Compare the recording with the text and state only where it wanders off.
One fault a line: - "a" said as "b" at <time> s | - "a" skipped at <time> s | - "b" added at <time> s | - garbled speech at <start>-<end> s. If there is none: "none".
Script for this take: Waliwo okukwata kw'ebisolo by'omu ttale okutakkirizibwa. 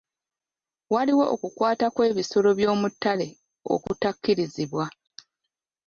none